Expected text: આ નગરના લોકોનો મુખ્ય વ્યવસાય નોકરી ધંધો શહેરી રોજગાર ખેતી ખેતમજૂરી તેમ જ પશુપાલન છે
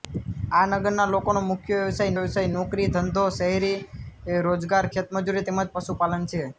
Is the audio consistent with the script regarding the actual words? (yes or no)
no